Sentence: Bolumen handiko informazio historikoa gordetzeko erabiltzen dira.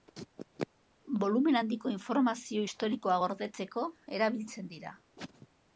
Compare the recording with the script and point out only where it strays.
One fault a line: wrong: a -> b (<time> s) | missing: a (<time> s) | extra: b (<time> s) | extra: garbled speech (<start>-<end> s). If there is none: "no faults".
no faults